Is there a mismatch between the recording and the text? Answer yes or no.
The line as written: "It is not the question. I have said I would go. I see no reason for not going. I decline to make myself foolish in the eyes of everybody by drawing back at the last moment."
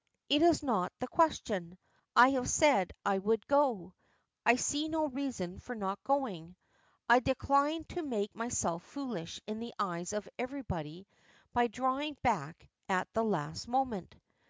no